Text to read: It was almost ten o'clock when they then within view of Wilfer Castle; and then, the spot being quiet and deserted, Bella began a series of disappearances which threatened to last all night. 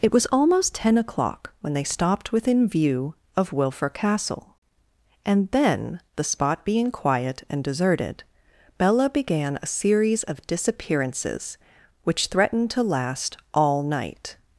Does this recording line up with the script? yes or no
no